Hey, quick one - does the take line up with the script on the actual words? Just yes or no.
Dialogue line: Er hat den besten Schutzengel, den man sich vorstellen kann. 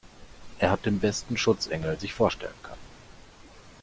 no